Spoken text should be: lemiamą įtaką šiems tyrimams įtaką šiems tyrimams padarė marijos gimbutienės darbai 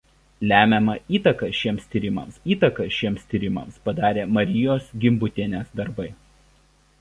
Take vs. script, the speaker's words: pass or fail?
pass